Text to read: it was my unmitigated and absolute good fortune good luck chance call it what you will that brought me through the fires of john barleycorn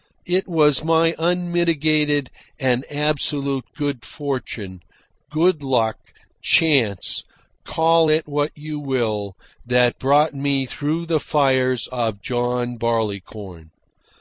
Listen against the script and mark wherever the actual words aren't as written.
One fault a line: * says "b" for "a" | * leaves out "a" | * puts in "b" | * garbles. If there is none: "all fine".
all fine